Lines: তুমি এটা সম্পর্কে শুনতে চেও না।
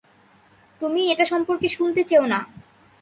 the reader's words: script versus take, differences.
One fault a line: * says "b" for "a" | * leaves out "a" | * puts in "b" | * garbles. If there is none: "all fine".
all fine